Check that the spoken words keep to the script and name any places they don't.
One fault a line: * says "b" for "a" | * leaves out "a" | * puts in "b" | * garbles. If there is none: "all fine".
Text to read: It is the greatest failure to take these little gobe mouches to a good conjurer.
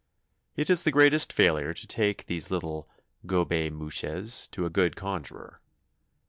all fine